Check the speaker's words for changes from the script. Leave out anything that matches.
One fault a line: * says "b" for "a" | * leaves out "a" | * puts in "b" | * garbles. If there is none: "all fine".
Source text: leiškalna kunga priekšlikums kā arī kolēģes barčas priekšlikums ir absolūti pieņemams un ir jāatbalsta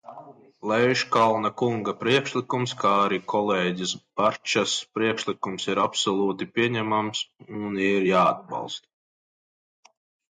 all fine